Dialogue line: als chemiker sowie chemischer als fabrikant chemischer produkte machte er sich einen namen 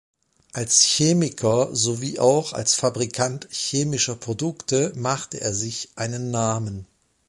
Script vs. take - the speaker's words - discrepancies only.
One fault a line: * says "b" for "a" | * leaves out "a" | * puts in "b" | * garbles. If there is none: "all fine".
* says "auch" for "chemischer"